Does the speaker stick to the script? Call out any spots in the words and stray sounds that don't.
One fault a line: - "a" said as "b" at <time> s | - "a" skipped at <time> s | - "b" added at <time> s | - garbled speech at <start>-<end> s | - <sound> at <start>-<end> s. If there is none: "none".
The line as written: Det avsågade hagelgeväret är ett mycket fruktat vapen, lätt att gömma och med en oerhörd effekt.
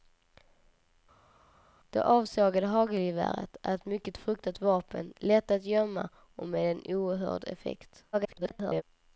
- garbled speech at 8.1-8.8 s